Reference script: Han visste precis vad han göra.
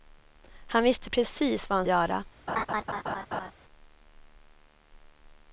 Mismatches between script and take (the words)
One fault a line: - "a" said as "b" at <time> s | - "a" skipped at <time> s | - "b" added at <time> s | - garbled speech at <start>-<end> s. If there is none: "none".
none